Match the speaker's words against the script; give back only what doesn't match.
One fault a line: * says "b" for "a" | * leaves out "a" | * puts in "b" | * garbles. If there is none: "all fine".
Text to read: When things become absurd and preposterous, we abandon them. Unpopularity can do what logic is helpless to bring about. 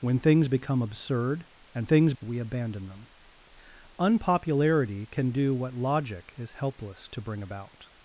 * says "things" for "preposterous"